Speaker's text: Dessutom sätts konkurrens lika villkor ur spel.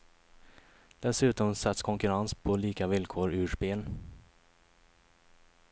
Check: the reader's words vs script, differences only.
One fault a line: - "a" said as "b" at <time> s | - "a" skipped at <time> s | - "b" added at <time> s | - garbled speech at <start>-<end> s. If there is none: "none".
- "på" added at 2.3 s